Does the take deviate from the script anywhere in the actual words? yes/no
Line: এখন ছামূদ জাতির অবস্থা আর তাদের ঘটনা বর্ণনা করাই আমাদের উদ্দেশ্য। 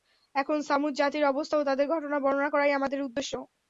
yes